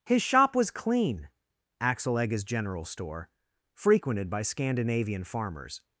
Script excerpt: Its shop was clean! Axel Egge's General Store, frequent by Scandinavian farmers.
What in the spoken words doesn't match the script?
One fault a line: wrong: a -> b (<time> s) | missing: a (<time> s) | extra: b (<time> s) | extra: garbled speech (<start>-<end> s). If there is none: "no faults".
wrong: Its -> His (0.1 s)
wrong: frequent -> frequented (3.8 s)